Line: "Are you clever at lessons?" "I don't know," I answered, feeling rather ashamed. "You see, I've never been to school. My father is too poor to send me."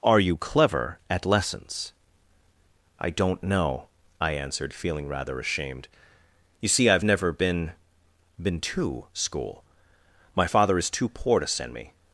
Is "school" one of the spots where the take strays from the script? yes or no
no